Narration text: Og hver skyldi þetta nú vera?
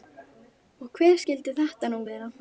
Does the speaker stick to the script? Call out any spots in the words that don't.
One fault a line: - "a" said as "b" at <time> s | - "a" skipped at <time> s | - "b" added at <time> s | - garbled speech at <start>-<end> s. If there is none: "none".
none